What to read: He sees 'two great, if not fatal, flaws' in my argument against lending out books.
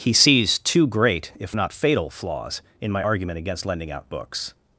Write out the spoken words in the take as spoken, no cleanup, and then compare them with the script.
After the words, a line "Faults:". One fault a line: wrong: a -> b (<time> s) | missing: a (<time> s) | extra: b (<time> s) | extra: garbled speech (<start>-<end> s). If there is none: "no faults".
He sees 'two great, if not fatal, flaws' in my argument against lending out books.
Faults:
no faults